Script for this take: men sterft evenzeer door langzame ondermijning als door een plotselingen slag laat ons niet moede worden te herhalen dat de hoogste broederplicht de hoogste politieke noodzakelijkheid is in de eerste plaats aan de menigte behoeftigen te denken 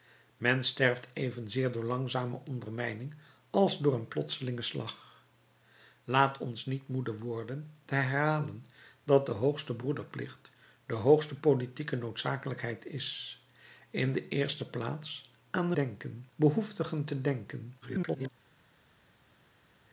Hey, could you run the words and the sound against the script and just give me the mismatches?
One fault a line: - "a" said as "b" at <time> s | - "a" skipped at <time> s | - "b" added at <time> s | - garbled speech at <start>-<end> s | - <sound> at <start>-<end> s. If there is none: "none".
- "menigte" said as "denken" at 15.7 s
- garbled speech at 17.8-18.3 s